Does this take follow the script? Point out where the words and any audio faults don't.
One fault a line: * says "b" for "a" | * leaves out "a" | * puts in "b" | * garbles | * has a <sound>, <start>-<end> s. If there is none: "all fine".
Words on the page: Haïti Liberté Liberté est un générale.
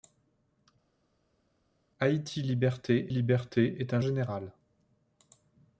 all fine